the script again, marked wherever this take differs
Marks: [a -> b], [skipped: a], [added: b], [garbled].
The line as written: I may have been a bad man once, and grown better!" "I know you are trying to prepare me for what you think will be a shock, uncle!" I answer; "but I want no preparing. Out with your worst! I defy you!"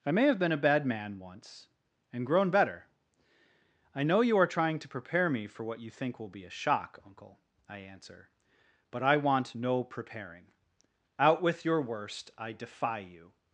I may have been a bad man once, and grown better!" "I know you are trying to prepare me for what you think will be a shock, uncle!" I answer; "but I want no preparing. Out with your worst! I defy you!"